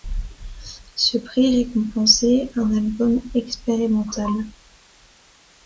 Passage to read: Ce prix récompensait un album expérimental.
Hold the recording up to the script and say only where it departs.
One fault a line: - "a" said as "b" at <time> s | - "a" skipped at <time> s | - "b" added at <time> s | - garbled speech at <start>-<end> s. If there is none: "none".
none